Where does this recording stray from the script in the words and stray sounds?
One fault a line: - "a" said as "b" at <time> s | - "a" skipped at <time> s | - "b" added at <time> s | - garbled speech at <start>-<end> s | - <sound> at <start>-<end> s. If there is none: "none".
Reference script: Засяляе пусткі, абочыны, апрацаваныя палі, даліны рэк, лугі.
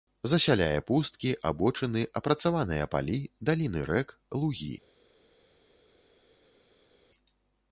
none